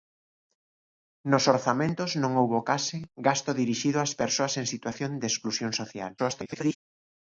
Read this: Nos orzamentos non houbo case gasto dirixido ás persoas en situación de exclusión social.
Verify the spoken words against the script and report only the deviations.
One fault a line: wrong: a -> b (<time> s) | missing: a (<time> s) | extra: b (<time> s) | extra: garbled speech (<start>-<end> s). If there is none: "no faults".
extra: garbled speech (6.2-6.8 s)